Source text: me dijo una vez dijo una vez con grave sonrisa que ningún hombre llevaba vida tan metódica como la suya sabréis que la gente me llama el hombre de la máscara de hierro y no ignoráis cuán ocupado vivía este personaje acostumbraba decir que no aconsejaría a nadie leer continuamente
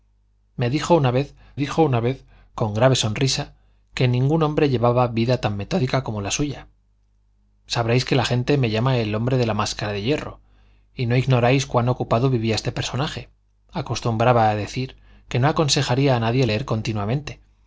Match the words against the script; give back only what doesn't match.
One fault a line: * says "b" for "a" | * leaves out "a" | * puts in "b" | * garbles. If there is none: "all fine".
all fine